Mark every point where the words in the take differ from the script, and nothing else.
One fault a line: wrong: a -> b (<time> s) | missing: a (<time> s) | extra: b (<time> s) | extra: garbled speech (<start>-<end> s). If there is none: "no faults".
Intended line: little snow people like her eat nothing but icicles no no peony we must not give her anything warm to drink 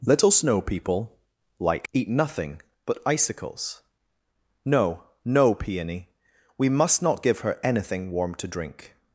missing: her (1.9 s)